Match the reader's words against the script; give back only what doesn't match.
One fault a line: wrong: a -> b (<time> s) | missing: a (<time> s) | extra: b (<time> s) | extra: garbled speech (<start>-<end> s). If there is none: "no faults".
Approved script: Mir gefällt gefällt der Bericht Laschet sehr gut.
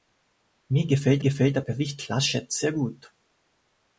no faults